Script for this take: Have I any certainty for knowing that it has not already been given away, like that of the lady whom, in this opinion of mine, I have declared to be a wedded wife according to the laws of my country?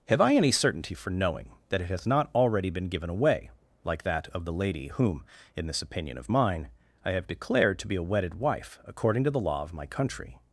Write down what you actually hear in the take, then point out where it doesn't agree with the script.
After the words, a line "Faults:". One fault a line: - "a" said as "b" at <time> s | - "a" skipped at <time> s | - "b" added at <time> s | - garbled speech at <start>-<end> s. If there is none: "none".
Have I any certainty for knowing that it has not already been given away, like that of the lady whom, in this opinion of mine, I have declared to be a wedded wife according to the law of my country?
Faults:
- "laws" said as "law" at 9.4 s